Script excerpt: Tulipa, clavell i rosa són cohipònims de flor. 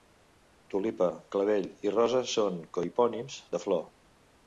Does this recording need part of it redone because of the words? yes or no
no